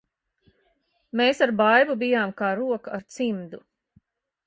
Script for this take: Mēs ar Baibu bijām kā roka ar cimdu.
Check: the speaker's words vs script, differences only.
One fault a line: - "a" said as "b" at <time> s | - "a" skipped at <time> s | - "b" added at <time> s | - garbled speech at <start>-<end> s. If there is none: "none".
none